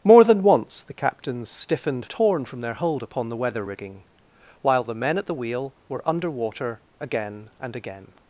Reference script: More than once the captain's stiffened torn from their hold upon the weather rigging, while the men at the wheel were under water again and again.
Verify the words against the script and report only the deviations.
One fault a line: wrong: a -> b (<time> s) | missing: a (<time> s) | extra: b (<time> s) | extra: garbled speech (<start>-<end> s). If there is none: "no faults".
no faults